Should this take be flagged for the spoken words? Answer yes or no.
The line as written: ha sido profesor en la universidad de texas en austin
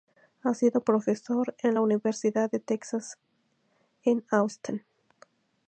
no